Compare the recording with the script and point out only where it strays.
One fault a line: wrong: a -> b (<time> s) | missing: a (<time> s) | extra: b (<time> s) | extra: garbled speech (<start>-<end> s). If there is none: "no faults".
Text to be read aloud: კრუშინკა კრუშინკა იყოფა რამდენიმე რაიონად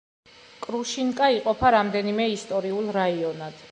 missing: კრუშინკა (1.3 s)
extra: ისტორიულ (2.4 s)